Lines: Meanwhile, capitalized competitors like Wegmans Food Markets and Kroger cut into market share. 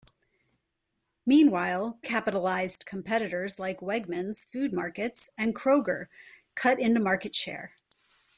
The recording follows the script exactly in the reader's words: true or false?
true